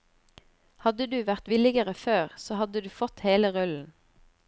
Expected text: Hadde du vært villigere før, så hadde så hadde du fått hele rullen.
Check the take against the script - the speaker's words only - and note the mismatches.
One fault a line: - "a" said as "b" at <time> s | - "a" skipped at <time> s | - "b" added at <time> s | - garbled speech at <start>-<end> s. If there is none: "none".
- "så hadde" skipped at 2.9 s